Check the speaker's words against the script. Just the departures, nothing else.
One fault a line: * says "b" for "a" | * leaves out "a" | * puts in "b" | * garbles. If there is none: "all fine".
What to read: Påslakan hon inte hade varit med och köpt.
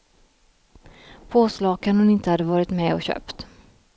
all fine